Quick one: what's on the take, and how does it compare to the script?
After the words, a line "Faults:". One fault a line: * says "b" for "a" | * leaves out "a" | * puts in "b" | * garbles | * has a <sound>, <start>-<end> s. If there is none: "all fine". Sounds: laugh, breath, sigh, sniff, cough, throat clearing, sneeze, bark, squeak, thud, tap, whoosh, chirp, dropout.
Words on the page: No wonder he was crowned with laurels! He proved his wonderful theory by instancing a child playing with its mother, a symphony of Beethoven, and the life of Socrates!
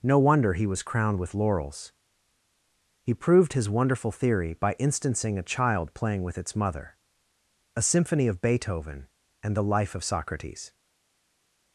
No wonder he was crowned with laurels! He proved his wonderful theory by instancing a child playing with its mother, a symphony of Beethoven, and the life of Socrates!
Faults:
all fine